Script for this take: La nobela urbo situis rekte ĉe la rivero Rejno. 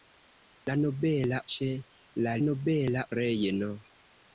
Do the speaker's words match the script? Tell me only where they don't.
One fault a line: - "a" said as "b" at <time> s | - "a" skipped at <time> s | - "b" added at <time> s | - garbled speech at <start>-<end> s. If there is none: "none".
- "urbo situis rekte" skipped at 1.4 s
- "rivero" said as "nobela" at 2.5 s